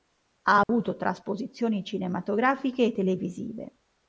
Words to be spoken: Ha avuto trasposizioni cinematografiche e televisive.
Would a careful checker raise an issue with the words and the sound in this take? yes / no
yes